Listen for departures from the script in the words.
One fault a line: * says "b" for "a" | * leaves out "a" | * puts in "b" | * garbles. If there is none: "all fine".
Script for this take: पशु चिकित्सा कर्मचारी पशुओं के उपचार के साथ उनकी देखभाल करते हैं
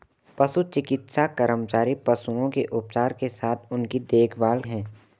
* leaves out "करते"